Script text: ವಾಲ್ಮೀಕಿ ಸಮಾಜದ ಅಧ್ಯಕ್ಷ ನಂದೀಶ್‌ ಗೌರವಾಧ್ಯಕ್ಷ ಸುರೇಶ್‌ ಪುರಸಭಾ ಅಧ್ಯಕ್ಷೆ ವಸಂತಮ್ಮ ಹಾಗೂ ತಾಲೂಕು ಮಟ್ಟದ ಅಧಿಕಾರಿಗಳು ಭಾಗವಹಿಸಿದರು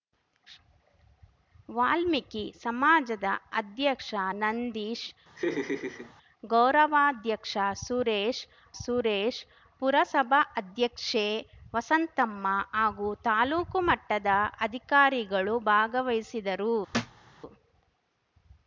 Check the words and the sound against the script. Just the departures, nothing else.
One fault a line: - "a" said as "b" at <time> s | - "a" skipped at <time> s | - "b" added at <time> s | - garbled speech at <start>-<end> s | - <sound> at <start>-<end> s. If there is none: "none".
- laugh at 5.4-6.1 s
- "ಸುರೇಶ್" added at 8.8 s
- thud at 16.9-17.2 s